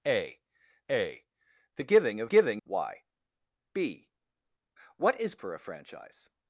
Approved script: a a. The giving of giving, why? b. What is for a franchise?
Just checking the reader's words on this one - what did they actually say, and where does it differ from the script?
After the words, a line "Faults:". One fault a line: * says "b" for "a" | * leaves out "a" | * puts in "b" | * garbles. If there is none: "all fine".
a a. The giving of giving, why? b. What is for a franchise?
Faults:
all fine